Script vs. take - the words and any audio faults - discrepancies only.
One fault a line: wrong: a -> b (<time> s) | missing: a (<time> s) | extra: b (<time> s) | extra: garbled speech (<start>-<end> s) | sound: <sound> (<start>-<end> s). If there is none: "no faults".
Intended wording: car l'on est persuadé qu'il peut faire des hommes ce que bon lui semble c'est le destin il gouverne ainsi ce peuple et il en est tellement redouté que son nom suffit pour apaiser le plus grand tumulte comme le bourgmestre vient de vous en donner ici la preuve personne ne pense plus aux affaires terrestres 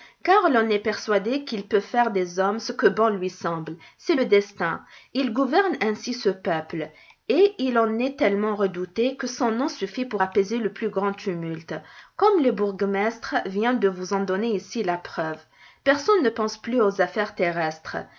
no faults